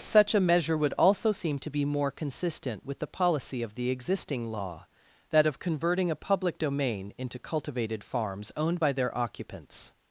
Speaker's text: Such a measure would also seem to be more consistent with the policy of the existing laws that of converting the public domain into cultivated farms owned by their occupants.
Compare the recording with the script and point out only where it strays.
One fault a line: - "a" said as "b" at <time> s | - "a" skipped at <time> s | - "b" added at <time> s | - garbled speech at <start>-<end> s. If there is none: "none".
- "laws" said as "law" at 4.5 s
- "the" said as "a" at 6.1 s